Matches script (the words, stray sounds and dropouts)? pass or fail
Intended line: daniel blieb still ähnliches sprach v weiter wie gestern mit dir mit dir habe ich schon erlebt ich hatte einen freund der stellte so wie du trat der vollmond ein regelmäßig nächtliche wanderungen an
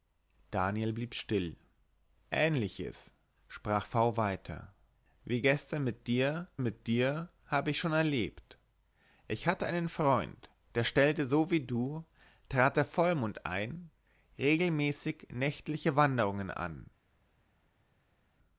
pass